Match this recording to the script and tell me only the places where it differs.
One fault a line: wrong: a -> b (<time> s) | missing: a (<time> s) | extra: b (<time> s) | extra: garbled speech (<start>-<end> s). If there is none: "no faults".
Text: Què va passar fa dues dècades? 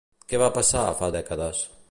missing: dues (1.1 s)